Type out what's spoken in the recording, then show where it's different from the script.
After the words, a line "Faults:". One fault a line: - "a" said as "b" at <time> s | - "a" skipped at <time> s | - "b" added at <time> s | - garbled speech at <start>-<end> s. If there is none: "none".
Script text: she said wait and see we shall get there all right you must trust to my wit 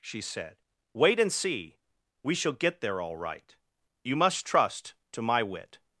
she said wait and see we shall get there all right you must trust to my wit
Faults:
none